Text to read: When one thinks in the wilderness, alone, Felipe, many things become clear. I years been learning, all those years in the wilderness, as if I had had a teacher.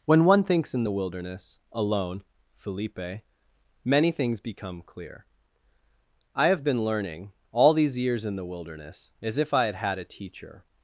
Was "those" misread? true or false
true